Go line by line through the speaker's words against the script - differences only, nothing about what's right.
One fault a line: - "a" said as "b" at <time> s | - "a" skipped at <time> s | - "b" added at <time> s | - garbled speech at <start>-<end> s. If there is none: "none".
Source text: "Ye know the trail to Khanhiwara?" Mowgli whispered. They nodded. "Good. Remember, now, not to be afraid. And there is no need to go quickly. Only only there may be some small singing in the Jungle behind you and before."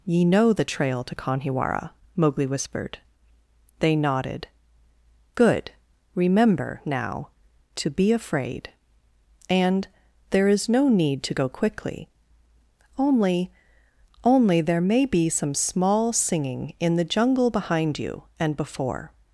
- "not" skipped at 7.3 s